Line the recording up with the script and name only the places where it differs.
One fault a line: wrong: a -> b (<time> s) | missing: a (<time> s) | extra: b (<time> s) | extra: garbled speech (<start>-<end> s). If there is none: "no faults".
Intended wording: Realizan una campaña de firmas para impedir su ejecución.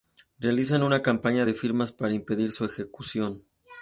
no faults